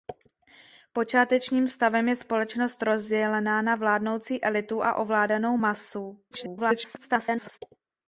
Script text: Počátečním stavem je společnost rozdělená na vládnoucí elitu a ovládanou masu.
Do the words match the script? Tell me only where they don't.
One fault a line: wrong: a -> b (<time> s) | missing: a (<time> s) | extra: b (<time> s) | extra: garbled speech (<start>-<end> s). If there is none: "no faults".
extra: garbled speech (6.3-7.6 s)